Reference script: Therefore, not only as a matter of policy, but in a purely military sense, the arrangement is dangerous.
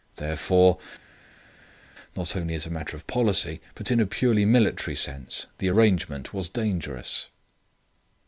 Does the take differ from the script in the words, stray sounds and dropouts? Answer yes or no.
yes